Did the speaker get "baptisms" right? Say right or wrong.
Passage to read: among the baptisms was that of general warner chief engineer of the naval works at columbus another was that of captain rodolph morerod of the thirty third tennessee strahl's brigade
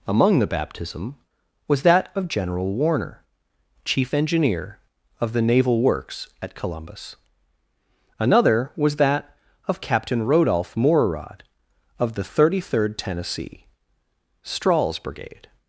wrong